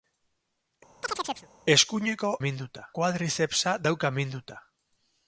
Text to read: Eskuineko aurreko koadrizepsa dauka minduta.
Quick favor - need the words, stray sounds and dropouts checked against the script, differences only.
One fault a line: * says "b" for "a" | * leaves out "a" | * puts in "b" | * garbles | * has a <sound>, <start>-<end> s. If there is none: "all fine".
* has a chirp, 1.0-1.5 s
* says "minduta" for "aurreko"